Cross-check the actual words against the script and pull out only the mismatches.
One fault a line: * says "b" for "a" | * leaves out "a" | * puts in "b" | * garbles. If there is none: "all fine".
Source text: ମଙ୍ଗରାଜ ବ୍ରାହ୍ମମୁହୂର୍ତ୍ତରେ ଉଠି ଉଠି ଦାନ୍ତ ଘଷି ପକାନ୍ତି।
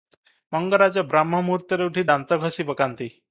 * leaves out "ଉଠି"